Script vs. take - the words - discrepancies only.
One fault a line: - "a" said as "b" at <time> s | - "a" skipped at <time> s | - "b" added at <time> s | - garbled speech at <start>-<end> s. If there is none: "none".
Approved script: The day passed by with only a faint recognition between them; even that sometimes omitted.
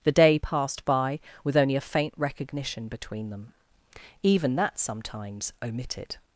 none